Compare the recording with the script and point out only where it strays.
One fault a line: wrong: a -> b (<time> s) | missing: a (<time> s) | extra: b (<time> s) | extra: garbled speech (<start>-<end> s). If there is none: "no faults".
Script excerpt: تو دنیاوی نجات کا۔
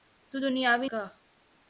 missing: نجات (0.9 s)